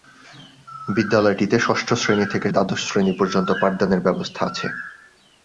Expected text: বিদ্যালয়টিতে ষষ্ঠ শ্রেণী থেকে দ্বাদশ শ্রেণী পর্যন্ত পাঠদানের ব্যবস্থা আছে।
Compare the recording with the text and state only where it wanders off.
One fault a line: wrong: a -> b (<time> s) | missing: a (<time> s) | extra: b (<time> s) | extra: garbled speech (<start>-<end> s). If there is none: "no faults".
no faults